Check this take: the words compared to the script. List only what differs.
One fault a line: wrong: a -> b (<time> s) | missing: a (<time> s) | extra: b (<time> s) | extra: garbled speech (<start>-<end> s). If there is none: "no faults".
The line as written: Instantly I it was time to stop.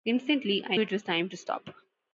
no faults